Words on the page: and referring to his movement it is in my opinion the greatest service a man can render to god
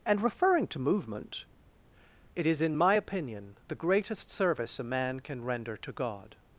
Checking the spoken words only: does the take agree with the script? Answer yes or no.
no